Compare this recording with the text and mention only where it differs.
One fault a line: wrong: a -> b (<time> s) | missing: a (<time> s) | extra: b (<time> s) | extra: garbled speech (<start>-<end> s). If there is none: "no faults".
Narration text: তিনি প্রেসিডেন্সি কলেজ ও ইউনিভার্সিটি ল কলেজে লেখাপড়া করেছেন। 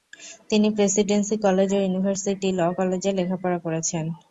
no faults